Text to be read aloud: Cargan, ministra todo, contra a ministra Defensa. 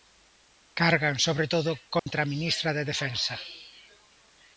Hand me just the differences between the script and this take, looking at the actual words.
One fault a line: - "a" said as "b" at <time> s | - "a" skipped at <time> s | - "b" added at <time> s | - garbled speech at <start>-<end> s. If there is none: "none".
- "ministra" said as "sobre" at 1.3 s
- "de" added at 2.8 s